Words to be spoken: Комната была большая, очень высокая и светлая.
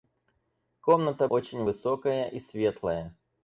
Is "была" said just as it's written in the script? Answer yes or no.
no